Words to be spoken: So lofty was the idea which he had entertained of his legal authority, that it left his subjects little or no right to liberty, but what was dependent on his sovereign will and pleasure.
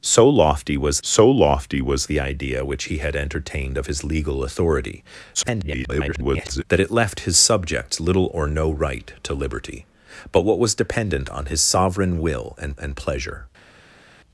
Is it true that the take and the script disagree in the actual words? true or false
true